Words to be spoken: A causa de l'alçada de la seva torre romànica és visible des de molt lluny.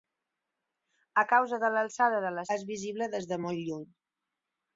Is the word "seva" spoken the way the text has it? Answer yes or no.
no